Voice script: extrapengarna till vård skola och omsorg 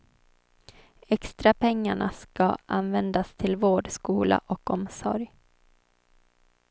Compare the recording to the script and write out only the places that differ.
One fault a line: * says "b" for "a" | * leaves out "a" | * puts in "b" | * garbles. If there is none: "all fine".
* puts in "ska användas"